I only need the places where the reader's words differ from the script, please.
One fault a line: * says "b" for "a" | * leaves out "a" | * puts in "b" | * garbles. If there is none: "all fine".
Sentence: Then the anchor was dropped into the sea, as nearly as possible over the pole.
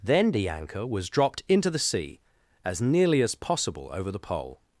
all fine